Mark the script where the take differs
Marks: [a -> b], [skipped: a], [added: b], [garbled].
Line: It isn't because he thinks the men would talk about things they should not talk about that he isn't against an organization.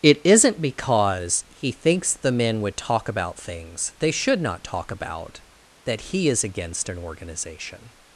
It isn't because he thinks the men would talk about things they should not talk about that he [isn't -> is] against an organization.